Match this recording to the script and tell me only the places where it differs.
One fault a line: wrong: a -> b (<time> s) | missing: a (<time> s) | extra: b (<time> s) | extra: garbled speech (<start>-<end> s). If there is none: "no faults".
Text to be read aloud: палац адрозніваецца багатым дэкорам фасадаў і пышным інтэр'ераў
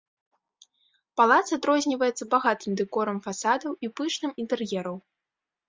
no faults